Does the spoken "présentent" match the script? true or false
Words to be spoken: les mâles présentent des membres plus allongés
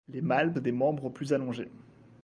false